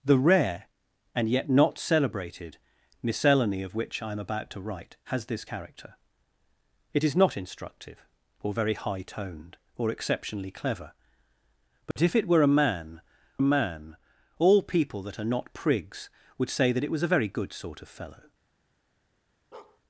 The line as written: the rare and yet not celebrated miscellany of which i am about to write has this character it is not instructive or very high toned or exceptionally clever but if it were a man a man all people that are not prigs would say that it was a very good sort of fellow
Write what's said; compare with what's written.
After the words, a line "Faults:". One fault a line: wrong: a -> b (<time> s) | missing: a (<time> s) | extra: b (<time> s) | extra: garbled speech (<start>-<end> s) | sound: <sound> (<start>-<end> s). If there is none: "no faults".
the rare and yet not celebrated miscellany of which i am about to write has this character it is not instructive or very high toned or exceptionally clever but if it were a man a man all people that are not prigs would say that it was a very good sort of fellow
Faults:
sound: dropout (11.9-12.0 s)
sound: bark (19.5-19.8 s)